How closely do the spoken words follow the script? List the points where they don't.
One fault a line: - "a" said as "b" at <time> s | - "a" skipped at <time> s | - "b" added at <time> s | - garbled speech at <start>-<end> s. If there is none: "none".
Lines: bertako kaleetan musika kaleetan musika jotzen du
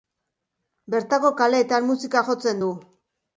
- "kaleetan musika" skipped at 2.2 s